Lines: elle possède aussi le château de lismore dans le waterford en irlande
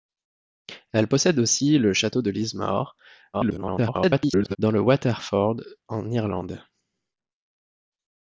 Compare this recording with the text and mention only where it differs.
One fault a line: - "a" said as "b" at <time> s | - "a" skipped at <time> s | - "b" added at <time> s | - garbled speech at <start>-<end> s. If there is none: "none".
- garbled speech at 3.3-4.6 s